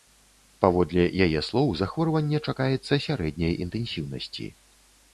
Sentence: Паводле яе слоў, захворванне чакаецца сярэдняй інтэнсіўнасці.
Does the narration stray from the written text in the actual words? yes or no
no